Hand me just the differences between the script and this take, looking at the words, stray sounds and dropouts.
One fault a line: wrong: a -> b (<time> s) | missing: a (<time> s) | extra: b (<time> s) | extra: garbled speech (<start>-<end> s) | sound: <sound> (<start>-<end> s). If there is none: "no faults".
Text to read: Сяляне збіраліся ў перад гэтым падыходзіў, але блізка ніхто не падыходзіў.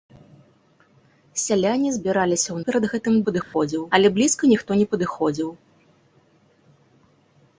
sound: dropout (3.4-3.5 s)